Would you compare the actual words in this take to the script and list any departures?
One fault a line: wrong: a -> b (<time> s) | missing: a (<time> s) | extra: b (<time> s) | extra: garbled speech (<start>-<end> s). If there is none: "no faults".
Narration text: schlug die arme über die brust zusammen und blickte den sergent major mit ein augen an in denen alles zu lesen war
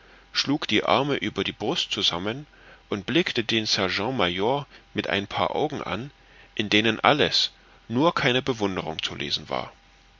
extra: paar (5.3 s)
extra: nur keine bewunderung (7.9 s)